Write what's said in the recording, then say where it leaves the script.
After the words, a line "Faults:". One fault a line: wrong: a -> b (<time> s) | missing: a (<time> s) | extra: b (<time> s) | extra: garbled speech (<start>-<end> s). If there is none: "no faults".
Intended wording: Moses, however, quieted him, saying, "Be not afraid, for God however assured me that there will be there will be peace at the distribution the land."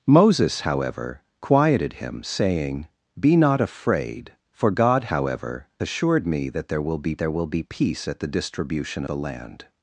Moses, however, quieted him, saying, "Be not afraid, for God however assured me that there will be there will be peace at the distribution the land."
Faults:
no faults